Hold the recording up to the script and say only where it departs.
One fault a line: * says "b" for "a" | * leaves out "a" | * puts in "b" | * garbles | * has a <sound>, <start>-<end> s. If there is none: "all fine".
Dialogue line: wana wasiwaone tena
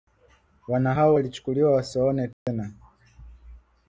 * puts in "hao walichukuliwa"
* has a dropout, 2.3-2.5 s